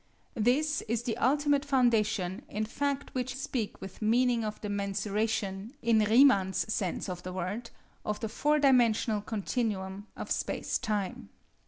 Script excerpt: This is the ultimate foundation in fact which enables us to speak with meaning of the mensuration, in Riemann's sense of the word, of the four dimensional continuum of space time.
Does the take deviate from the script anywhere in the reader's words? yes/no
yes